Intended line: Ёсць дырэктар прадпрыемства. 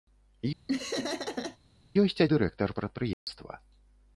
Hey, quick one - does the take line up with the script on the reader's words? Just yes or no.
yes